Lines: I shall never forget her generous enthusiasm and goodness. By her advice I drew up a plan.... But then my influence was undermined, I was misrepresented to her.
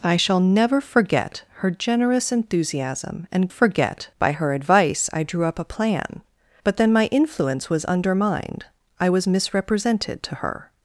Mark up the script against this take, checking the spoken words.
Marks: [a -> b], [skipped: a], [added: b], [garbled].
I shall never forget her generous enthusiasm and [goodness. -> forget] By her advice I drew up a plan.... But then my influence was undermined, I was misrepresented to her.